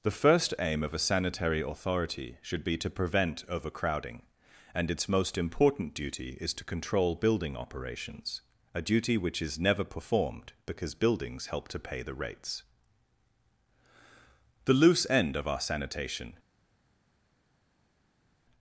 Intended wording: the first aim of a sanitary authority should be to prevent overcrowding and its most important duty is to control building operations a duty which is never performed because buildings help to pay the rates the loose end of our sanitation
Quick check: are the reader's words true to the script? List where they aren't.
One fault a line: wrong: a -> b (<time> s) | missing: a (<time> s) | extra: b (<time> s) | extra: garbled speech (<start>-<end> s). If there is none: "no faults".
no faults